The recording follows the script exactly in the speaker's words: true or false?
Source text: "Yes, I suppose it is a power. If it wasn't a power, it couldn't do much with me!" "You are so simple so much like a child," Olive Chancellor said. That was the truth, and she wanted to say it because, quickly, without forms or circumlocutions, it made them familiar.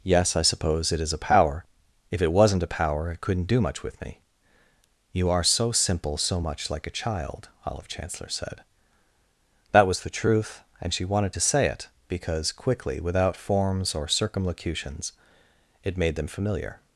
true